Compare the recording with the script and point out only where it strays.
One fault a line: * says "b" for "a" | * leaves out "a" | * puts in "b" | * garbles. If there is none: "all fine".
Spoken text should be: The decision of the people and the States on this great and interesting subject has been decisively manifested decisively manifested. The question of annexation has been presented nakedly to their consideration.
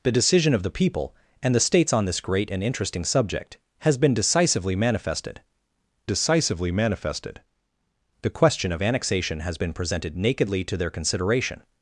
all fine